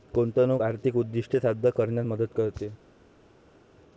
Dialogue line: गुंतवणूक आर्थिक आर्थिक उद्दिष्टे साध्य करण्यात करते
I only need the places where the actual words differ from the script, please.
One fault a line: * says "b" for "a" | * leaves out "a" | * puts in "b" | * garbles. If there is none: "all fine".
* leaves out "आर्थिक"
* puts in "मदत"